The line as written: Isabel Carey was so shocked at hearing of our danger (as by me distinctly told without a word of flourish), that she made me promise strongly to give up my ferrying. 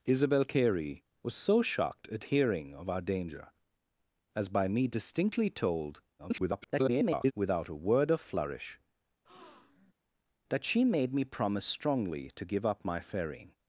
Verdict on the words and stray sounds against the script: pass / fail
fail